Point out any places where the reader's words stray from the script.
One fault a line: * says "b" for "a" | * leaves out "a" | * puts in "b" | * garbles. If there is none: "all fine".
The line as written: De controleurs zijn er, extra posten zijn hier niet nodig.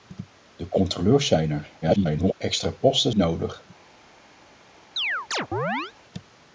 * garbles
* leaves out "zijn hier niet"